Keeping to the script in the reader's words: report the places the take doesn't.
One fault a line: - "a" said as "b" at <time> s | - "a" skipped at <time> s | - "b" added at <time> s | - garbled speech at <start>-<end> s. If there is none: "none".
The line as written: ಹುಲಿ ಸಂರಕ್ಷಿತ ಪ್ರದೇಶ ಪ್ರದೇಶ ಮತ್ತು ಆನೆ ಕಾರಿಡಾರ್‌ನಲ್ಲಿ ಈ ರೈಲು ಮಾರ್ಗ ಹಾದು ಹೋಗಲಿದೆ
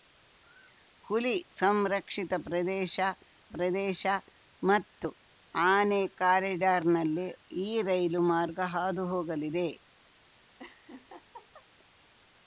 none